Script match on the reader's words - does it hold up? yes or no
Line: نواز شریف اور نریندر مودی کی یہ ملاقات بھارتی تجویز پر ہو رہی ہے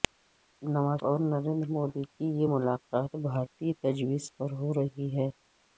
no